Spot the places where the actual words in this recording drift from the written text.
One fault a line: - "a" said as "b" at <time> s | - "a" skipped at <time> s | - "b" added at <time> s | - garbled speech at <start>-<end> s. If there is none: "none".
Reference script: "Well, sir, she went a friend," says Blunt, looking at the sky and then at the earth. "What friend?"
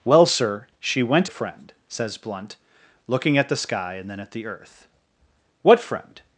none